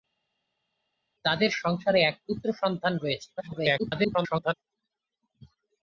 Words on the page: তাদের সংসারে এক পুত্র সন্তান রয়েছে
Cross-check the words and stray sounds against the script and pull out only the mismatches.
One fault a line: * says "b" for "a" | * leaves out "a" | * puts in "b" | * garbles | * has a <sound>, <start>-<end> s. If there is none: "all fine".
* garbles